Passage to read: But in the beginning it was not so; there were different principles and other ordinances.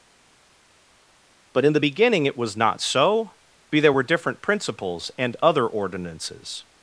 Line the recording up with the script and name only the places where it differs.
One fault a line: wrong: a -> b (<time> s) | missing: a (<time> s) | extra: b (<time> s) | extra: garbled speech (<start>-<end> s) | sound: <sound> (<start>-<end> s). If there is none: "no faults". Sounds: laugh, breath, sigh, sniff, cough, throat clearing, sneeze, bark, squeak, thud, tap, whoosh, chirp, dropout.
extra: be (3.7 s)